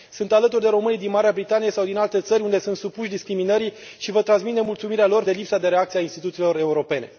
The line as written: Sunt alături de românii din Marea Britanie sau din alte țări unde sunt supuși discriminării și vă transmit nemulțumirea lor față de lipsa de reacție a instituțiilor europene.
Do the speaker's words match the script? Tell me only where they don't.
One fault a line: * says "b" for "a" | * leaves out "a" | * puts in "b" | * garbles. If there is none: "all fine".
* leaves out "față"